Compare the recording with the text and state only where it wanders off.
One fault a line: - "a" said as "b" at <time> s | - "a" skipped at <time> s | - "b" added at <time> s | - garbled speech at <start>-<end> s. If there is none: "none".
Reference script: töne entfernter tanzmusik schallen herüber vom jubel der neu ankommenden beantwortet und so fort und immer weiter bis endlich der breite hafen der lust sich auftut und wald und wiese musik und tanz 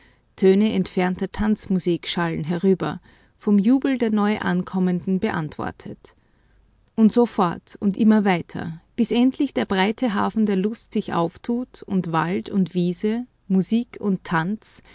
none